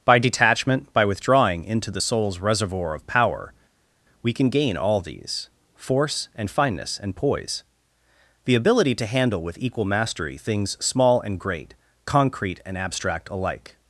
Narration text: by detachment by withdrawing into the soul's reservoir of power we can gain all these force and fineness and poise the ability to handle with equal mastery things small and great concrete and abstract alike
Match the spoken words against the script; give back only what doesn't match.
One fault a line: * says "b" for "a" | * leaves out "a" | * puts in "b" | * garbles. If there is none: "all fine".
all fine